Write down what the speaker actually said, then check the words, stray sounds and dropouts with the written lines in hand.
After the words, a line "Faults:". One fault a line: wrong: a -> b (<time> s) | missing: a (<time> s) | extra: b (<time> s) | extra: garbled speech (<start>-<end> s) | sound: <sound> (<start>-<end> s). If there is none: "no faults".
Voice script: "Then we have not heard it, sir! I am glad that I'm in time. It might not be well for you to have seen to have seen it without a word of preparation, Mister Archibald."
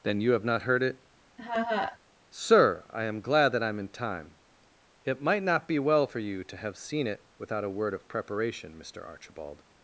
"Then you have not heard it, sir! I am glad that I'm in time. It might not be well for you to have seen it without a word of preparation, Mister Archibald."
Faults:
wrong: we -> you (0.2 s)
sound: laugh (1.4-2.0 s)
missing: to have seen (7.1 s)